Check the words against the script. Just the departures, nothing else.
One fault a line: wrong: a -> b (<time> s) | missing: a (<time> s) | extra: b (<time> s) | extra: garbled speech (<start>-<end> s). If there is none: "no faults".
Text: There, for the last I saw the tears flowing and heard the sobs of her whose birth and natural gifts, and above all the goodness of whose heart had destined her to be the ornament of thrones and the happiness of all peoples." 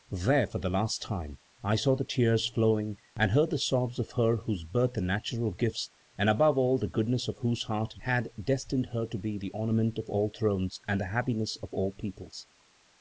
extra: time (1.0 s)
extra: all (10.1 s)